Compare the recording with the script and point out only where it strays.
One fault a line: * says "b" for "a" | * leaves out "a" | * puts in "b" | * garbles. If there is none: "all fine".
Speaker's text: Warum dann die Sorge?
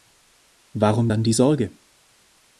all fine